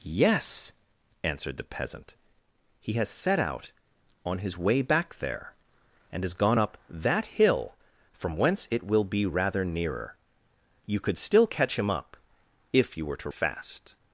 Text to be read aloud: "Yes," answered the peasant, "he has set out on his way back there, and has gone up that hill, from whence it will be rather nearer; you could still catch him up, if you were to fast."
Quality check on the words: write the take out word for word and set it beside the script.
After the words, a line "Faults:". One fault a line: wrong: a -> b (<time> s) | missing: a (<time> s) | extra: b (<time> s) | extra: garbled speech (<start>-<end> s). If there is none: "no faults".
"Yes," answered the peasant, "he has set out on his way back there, and has gone up that hill, from whence it will be rather nearer; you could still catch him up, if you were to fast."
Faults:
no faults